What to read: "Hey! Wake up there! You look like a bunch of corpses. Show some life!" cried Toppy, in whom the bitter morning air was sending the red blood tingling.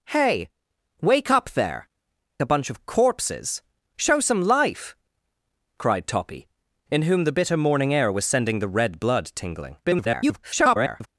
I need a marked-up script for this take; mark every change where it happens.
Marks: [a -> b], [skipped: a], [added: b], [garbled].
"Hey! Wake up there! [skipped: You look like] a bunch of corpses. Show some life!" cried Toppy, in whom the bitter morning air was sending the red blood tingling. [garbled]